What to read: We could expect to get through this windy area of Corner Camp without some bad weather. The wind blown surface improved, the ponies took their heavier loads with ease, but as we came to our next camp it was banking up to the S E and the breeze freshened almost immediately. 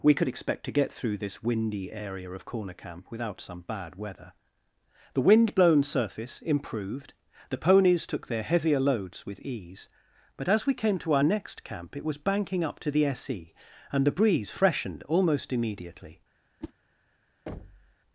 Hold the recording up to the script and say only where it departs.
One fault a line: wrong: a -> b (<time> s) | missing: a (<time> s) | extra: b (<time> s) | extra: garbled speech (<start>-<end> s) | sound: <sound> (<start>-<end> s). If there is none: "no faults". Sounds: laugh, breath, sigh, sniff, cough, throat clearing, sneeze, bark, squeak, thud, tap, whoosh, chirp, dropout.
sound: whoosh (16.6-16.7 s)
sound: thud (17.5-18.0 s)